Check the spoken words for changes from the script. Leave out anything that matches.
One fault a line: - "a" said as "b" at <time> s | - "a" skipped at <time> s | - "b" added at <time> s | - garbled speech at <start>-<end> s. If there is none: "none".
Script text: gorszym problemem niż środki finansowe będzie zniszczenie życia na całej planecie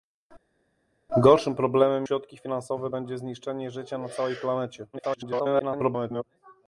- "niż" skipped at 2.1 s
- garbled speech at 4.9-6.2 s